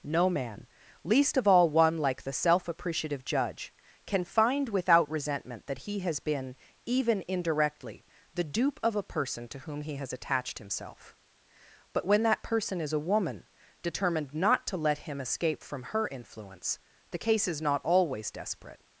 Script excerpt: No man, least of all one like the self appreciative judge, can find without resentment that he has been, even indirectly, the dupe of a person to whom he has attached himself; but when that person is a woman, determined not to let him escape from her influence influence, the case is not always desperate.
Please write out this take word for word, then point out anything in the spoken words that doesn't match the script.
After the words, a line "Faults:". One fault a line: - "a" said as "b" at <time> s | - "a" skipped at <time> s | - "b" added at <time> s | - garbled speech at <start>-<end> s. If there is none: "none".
No man, least of all one like the self appreciative judge, can find without resentment that he has been, even indirectly, the dupe of a person to whom he has attached himself; but when that person is a woman, determined not to let him escape from her influence, the case is not always desperate.
Faults:
- "influence" skipped at 16.8 s